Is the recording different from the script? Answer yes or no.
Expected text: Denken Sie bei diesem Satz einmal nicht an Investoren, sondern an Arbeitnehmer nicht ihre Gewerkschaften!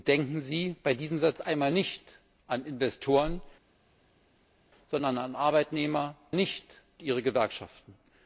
no